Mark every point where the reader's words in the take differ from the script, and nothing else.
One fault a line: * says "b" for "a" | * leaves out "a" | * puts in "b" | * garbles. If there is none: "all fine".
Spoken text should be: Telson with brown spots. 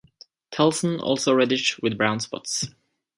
* puts in "also reddish"